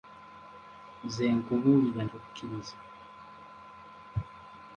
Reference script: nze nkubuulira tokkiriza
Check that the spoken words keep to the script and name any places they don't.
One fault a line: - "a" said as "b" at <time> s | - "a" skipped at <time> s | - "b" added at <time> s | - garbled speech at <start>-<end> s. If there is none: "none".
none